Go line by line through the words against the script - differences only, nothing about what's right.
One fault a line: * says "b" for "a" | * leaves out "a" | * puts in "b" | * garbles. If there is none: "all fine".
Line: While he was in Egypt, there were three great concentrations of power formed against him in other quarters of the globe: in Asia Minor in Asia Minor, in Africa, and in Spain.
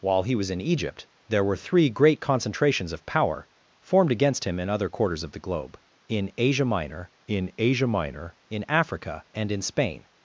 all fine